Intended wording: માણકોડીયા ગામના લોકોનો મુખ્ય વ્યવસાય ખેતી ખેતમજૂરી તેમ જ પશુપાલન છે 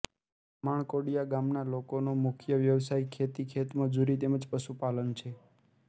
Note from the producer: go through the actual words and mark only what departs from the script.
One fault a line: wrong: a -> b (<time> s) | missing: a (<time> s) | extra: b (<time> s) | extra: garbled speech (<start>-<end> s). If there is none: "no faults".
no faults